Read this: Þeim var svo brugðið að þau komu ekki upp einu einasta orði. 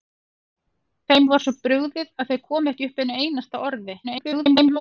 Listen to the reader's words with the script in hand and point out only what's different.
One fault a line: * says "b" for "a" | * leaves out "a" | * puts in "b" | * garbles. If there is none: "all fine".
* garbles